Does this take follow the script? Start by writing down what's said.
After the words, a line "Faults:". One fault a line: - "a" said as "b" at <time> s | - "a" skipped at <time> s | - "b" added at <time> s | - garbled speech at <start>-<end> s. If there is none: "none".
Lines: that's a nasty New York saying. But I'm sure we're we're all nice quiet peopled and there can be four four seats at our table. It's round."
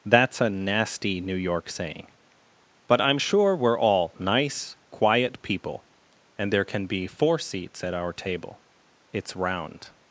that's a nasty New York saying. But I'm sure we're all nice quiet people and there can be four seats at our table. It's round."
Faults:
- "we're" skipped at 3.8 s
- "peopled" said as "people" at 5.4 s
- "four" skipped at 7.4 s